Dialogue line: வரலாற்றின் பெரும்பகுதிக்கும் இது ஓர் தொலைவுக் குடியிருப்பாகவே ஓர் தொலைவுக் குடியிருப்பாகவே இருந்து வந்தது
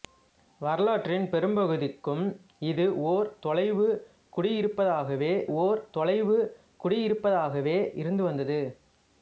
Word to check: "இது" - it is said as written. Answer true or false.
true